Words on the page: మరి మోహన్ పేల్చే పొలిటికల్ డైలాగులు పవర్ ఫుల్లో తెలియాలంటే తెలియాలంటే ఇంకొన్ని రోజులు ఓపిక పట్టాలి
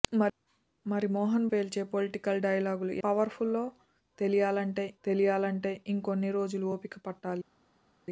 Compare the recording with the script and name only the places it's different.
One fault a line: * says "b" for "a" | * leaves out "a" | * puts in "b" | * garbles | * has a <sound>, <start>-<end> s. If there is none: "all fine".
all fine